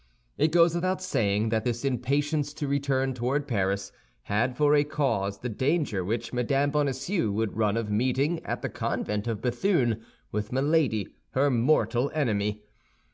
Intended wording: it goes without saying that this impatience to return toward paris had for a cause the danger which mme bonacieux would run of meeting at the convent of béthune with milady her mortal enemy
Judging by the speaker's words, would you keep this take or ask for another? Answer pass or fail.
pass